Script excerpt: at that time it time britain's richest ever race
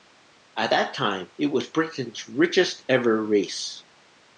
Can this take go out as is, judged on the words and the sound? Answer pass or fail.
fail